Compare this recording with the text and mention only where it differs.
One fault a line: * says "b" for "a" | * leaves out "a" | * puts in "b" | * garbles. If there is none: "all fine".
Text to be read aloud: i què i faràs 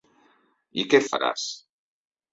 all fine